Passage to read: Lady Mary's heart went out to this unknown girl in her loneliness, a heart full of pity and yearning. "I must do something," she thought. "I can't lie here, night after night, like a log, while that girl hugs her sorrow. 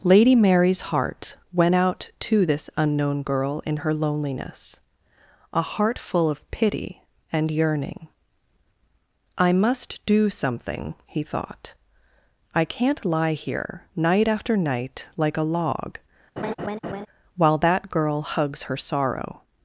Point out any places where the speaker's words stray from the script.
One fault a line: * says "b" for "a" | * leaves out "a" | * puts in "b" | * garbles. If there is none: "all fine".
* says "he" for "she"